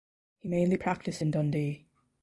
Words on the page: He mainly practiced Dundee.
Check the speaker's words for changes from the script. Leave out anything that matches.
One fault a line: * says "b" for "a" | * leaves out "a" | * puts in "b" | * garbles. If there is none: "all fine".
* puts in "in"